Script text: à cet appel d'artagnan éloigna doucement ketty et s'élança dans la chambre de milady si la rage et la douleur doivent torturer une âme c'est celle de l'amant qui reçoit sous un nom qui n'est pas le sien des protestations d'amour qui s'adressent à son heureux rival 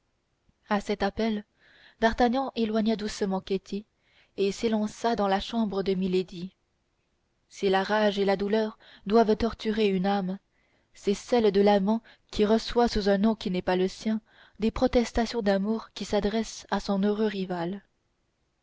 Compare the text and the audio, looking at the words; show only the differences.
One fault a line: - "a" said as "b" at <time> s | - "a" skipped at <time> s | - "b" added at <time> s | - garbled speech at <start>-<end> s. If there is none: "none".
none